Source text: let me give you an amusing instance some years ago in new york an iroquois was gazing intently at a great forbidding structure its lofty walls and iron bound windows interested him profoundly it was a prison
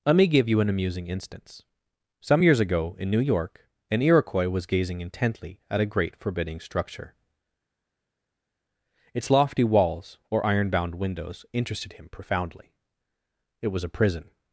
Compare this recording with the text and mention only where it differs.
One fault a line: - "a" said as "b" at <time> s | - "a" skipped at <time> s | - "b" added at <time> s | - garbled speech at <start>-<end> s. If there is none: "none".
- "and" said as "or" at 10.3 s